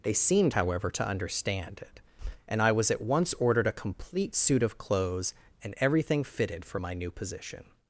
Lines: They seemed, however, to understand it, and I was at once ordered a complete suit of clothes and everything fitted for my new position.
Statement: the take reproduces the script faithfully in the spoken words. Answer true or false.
true